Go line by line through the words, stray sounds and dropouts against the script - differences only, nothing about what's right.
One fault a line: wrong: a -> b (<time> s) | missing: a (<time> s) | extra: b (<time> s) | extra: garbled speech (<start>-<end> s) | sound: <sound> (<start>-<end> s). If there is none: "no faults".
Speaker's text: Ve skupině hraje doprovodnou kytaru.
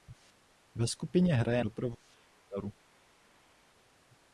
no faults